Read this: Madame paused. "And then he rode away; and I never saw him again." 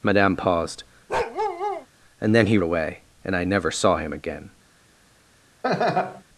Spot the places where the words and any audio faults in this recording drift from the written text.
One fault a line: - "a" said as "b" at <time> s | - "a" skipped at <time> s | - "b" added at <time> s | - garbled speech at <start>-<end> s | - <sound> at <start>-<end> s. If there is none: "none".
- bark at 1.1-1.9 s
- "rode" skipped at 2.6 s
- laugh at 5.6-6.2 s